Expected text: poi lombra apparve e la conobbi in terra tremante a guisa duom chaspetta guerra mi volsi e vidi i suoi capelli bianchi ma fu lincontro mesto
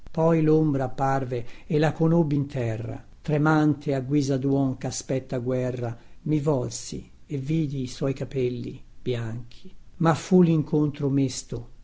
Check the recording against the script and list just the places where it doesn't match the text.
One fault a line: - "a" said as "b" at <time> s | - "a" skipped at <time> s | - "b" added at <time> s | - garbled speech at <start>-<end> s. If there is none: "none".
none